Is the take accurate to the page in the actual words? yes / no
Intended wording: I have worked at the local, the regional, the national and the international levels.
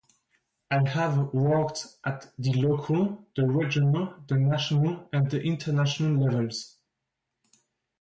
yes